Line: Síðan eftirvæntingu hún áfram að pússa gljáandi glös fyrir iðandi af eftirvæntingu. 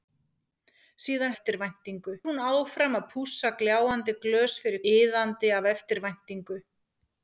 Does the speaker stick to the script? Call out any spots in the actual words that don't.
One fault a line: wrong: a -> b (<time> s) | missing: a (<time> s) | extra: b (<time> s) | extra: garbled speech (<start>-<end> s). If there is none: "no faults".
no faults